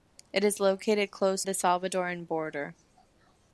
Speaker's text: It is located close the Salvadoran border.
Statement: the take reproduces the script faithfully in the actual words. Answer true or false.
true